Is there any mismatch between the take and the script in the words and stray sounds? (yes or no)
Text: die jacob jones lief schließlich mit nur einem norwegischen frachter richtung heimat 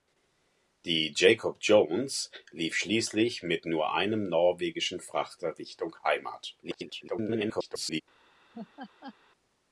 yes